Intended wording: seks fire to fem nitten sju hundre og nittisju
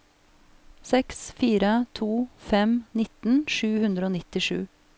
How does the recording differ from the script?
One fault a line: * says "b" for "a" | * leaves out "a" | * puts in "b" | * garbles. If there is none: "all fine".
all fine